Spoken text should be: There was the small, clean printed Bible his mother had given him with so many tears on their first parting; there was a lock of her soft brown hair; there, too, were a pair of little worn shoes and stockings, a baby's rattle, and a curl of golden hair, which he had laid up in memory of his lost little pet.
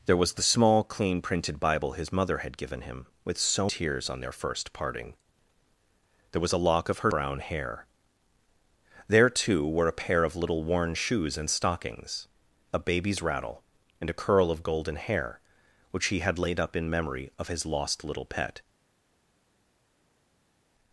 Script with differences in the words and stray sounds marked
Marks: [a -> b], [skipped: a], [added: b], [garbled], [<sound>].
There was the small, clean printed Bible his mother had given him with so [skipped: many] tears on their first parting; there was a lock of her [skipped: soft] brown hair; there, too, were a pair of little worn shoes and stockings, a baby's rattle, and a curl of golden hair, which he had laid up in memory of his lost little pet.